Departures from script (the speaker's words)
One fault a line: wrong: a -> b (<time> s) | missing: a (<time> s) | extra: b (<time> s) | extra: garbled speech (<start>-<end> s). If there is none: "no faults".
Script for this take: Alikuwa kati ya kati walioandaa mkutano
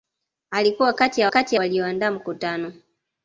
no faults